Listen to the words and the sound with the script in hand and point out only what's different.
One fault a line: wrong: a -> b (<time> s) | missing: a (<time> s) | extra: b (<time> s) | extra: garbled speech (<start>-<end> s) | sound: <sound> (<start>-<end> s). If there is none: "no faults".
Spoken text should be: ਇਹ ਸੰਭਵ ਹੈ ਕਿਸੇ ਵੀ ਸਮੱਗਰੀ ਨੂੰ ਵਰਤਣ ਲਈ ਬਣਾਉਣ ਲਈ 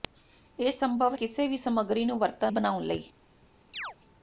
missing: ਹੈ (1.1 s)
missing: ਲਈ (2.5 s)
sound: chirp (3.7-4.0 s)